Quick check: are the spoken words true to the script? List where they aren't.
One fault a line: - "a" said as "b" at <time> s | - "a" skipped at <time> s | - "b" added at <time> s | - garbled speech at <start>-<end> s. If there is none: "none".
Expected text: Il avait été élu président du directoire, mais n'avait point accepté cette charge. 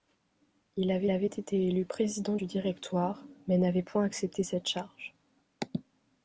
- "avait" added at 1.1 s